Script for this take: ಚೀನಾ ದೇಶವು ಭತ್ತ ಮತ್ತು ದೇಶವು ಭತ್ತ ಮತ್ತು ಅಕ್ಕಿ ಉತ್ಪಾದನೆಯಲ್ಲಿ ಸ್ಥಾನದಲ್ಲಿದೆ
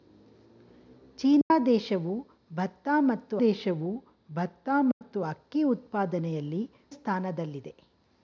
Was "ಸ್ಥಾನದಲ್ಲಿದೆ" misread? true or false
false